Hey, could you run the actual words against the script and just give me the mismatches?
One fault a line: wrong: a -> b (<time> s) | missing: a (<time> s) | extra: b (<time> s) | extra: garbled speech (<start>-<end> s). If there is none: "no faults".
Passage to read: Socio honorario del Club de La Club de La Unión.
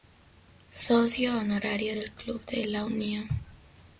missing: Club de La (2.8 s)